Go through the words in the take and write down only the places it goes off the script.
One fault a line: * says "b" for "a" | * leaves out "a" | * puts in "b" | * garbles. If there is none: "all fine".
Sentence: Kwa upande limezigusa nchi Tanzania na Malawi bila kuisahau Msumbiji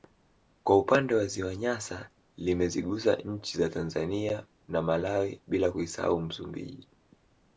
* puts in "wa ziwa Nyasa"
* puts in "za"